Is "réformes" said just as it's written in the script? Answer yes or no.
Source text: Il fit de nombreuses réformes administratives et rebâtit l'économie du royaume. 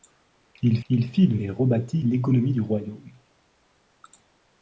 no